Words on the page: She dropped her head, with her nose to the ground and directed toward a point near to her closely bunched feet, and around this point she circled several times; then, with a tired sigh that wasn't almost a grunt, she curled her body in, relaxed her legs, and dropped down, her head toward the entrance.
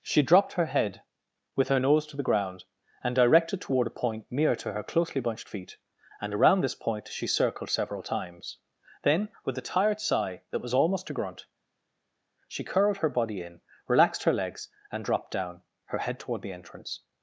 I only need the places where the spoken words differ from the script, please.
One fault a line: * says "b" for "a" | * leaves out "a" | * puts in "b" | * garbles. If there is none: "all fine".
* says "was" for "wasn't"